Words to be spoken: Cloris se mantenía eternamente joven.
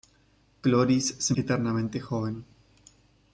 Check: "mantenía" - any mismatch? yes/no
yes